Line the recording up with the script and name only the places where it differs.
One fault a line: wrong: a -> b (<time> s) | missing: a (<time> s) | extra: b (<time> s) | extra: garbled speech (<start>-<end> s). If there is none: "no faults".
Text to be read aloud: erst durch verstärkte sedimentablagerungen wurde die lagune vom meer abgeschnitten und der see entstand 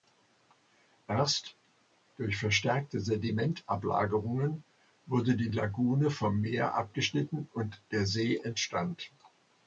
no faults